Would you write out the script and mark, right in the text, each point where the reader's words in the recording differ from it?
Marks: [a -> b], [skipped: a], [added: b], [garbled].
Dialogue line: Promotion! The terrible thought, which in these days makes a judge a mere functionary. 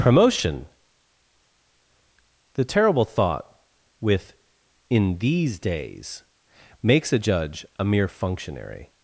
Promotion! The terrible thought, [which -> with] in these days makes a judge a mere functionary.